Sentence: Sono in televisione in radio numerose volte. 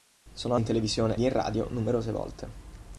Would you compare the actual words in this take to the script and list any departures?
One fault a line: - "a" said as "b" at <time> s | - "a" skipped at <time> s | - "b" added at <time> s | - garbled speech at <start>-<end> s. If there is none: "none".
none